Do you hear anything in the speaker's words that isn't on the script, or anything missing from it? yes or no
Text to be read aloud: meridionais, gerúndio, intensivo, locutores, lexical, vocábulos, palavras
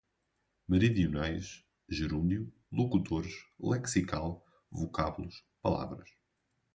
yes